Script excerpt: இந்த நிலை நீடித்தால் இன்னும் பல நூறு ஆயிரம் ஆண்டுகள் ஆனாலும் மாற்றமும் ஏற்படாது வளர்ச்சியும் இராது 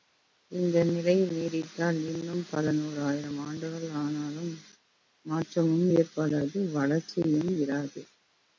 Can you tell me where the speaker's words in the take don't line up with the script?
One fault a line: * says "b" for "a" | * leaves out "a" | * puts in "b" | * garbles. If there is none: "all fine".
all fine